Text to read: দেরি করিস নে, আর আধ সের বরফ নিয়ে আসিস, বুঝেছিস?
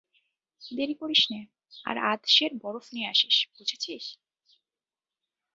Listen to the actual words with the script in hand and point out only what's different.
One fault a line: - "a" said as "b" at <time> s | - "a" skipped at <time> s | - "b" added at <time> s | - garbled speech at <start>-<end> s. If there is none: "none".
none